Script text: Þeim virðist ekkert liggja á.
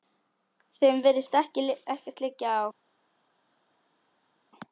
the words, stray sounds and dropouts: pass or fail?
pass